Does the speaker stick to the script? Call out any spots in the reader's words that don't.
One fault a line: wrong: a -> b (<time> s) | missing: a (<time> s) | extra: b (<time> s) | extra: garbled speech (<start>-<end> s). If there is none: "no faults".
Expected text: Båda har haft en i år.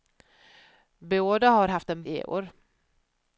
no faults